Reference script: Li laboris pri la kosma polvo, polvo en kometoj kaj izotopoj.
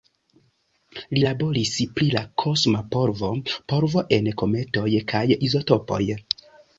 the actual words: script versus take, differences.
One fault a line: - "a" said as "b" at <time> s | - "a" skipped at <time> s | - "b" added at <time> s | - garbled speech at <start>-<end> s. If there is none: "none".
none